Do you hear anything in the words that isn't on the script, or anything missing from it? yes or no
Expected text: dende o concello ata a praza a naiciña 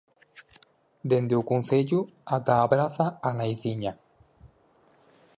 no